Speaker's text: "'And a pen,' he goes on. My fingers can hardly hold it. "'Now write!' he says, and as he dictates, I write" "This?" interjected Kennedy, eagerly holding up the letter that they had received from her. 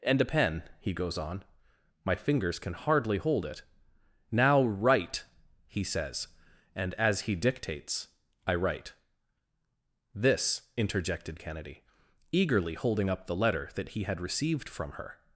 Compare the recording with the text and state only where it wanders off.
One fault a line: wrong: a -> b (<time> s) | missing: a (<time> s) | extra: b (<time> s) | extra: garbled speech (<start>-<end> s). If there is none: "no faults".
wrong: they -> he (13.9 s)